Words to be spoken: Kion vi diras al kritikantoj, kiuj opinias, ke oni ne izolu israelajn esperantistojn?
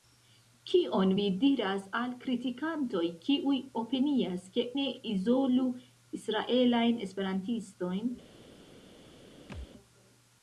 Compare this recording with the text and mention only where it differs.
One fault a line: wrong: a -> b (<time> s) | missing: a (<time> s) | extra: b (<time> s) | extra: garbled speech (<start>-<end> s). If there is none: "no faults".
missing: oni (4.7 s)